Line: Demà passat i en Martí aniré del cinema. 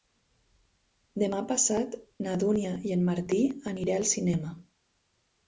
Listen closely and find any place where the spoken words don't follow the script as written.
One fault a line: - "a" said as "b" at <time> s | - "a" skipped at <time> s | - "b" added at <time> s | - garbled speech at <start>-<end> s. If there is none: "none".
- "na Dúnia" added at 2.3 s
- "del" said as "al" at 4.0 s